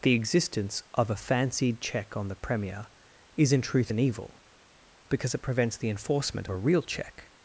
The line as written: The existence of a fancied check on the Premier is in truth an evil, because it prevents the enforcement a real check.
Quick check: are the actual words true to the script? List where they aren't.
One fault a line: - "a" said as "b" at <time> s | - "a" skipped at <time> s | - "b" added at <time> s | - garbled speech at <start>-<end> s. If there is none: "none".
none